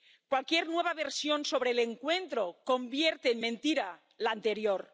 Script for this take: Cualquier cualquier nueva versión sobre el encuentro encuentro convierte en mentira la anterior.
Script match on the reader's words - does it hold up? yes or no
no